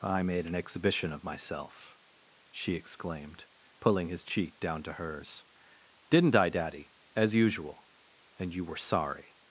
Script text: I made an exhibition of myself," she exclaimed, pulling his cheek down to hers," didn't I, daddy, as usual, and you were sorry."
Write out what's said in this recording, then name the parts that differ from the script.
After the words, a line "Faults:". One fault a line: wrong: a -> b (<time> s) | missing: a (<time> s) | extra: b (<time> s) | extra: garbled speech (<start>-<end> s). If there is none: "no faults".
I made an exhibition of myself," she exclaimed, pulling his cheek down to hers," didn't I, daddy, as usual, and you were sorry."
Faults:
no faults